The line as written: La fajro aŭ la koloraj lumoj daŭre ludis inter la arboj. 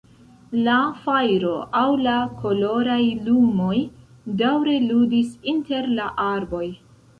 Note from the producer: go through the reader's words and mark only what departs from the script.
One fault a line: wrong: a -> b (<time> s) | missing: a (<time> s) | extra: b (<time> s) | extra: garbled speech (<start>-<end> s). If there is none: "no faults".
no faults